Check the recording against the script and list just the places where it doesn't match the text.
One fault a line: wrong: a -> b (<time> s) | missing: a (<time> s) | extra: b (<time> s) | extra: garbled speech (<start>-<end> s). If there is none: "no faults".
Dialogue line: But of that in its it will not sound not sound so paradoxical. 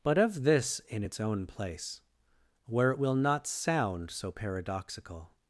wrong: that -> this (0.4 s)
extra: own place where (1.2 s)
missing: not sound (4.1 s)